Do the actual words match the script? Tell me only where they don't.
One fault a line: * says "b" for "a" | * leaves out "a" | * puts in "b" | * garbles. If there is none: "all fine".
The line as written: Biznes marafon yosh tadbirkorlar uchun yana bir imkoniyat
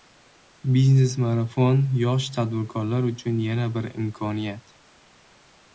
all fine